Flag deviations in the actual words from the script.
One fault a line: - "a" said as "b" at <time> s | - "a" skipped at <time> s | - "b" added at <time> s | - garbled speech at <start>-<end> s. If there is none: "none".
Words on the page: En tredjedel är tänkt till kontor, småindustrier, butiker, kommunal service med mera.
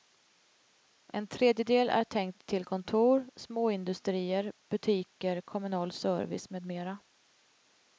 none